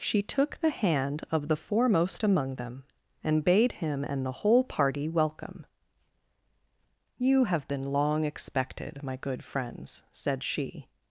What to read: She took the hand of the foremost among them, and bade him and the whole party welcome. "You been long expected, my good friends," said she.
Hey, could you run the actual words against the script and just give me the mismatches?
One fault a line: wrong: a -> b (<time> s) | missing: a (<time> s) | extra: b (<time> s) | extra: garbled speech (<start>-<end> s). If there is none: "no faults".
extra: have (7.4 s)